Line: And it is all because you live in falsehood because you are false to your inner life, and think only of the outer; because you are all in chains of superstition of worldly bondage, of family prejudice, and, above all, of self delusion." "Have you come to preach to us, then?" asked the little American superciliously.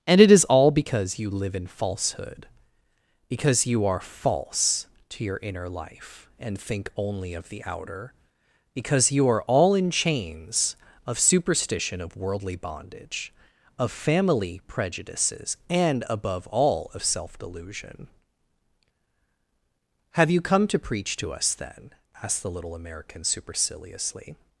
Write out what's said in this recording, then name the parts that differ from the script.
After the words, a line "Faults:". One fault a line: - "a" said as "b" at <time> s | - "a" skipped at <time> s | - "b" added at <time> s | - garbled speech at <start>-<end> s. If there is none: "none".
And it is all because you live in falsehood because you are false to your inner life, and think only of the outer; because you are all in chains of superstition of worldly bondage, of family prejudices, and, above all, of self delusion." "Have you come to preach to us, then?" asked the little American superciliously.
Faults:
- "prejudice" said as "prejudices" at 14.7 s